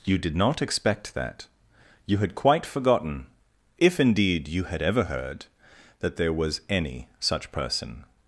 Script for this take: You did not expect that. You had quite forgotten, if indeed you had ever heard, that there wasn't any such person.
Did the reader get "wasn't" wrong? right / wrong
wrong